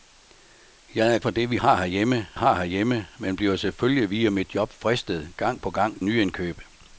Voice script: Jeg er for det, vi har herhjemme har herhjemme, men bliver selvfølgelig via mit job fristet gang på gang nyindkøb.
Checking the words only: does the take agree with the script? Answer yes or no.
yes